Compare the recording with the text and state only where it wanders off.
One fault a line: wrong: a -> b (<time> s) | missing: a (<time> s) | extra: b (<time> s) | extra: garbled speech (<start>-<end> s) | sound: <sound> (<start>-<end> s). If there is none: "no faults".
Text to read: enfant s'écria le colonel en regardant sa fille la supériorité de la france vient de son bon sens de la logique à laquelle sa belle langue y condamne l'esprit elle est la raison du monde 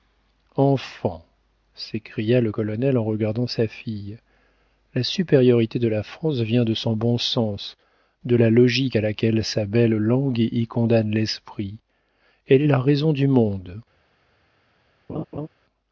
sound: laugh (15.1-15.5 s)